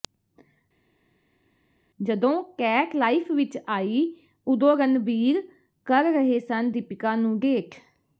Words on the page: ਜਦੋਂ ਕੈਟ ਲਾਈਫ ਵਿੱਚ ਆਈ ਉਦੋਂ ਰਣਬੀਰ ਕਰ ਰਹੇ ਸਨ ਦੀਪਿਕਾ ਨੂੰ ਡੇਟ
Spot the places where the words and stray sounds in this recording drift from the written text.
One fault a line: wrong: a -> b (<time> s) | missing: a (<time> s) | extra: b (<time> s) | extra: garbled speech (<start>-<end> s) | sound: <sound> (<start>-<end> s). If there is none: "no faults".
no faults